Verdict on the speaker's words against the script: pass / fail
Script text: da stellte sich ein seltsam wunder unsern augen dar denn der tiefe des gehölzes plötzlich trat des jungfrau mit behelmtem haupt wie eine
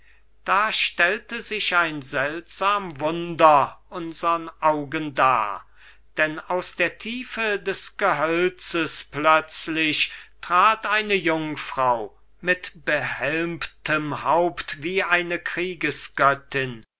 fail